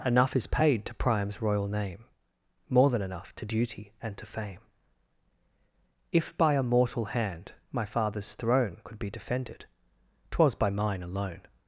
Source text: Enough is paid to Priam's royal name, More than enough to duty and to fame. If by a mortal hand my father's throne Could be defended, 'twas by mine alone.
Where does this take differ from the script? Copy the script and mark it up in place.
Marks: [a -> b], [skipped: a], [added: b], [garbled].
Enough is paid to Priam's royal name, More than enough to duty and to fame. If by a mortal hand my father's throne Could be defended, 'twas by mine alone.